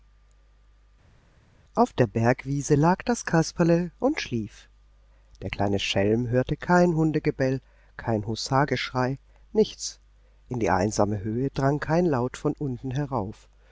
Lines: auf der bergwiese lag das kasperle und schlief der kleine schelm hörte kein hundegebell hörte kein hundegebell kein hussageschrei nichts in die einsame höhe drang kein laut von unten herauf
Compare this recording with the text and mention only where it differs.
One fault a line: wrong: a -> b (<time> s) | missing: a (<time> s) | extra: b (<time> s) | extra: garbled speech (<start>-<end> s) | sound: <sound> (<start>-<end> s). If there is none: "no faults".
missing: hörte kein hundegebell (7.6 s)